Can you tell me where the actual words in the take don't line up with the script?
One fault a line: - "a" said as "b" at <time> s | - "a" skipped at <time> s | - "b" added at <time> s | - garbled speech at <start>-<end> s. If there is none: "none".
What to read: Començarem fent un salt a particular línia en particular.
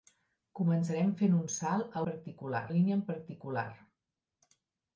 none